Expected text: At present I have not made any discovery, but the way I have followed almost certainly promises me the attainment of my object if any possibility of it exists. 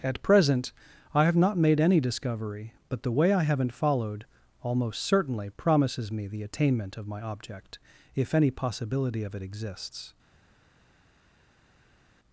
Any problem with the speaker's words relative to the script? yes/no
yes